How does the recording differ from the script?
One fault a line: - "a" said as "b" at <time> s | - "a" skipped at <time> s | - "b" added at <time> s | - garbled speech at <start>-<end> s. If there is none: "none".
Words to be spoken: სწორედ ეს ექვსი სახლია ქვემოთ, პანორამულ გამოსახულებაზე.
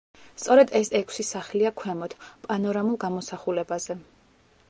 none